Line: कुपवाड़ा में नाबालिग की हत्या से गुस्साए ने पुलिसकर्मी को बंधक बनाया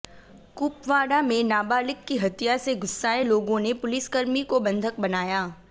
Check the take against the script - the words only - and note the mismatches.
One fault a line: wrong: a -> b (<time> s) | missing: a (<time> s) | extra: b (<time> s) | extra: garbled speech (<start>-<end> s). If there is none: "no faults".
extra: लोगों (3.2 s)